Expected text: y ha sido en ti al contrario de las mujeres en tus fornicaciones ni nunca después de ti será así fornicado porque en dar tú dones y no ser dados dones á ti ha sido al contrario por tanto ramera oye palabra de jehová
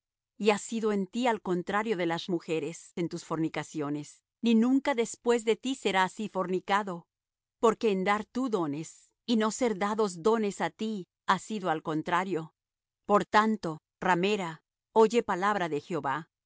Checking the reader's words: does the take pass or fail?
pass